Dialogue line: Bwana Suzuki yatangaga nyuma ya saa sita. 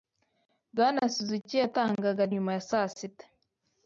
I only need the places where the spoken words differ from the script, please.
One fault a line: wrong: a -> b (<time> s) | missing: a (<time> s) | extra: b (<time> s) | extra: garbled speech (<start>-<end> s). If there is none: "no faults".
no faults